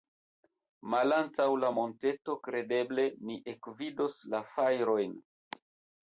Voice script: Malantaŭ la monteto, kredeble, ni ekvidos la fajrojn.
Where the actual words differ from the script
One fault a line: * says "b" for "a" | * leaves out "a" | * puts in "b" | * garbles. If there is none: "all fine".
all fine